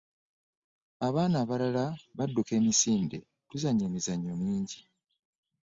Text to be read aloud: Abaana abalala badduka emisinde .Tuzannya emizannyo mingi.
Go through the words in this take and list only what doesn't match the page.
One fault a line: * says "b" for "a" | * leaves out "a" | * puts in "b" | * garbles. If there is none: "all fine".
all fine